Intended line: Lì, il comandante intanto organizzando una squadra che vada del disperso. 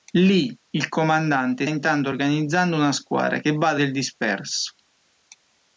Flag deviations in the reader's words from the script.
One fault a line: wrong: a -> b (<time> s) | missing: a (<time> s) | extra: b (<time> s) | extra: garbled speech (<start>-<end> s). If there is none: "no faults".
no faults